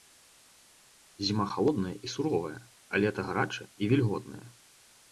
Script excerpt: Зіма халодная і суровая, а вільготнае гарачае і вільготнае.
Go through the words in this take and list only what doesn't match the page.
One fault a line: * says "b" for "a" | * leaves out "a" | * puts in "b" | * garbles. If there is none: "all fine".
* says "лета" for "вільготнае"